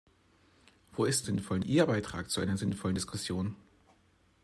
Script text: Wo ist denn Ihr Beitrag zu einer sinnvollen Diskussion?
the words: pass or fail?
fail